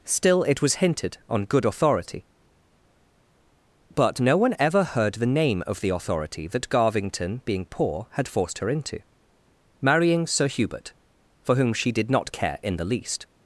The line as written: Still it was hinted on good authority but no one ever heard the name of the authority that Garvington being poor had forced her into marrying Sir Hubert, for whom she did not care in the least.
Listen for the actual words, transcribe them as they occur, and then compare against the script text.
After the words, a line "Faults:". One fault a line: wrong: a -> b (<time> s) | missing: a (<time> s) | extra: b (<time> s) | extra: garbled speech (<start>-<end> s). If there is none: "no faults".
Still it was hinted on good authority but no one ever heard the name of the authority that Garvington being poor had forced her into marrying Sir Hubert, for whom she did not care in the least.
Faults:
no faults